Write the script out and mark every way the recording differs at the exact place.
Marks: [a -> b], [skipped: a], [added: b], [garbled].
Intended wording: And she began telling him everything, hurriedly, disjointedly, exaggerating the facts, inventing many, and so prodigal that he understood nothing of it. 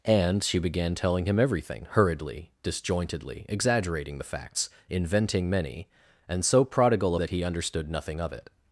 And she began telling him everything, hurriedly, disjointedly, exaggerating the facts, inventing many, and so prodigal that he understood nothing of it.